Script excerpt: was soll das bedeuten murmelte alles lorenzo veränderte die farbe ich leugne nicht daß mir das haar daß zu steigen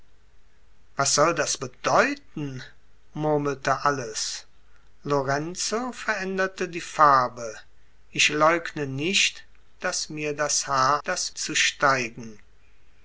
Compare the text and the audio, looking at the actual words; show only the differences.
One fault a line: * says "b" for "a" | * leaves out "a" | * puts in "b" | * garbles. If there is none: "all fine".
all fine